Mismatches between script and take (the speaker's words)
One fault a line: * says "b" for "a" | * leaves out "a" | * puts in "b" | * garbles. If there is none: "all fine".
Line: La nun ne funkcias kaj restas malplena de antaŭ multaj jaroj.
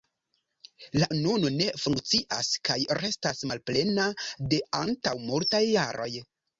all fine